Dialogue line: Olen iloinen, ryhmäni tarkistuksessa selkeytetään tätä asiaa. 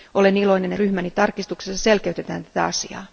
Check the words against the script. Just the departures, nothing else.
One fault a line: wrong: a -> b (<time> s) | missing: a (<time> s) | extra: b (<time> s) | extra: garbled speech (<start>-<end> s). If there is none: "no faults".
no faults